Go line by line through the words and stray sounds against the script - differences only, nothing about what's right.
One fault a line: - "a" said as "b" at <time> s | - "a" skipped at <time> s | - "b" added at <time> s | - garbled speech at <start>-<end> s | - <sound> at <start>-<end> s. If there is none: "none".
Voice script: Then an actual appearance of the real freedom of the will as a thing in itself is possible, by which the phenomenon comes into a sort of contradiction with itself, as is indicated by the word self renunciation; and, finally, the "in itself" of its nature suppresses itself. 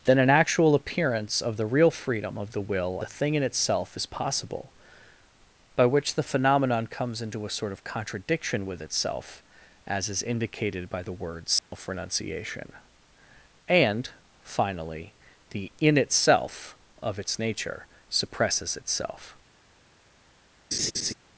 - "as" skipped at 3.0 s
- dropout at 11.6-11.7 s
- laugh at 20.7-21.1 s